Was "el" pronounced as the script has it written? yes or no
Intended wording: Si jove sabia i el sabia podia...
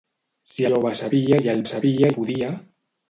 yes